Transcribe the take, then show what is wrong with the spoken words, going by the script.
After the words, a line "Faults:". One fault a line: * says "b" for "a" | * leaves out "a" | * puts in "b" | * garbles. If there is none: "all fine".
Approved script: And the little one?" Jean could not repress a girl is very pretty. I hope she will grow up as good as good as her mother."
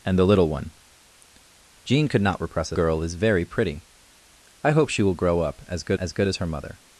And the little one?" Jean could not repress a girl is very pretty. I hope she will grow up as good as good as her mother."
Faults:
all fine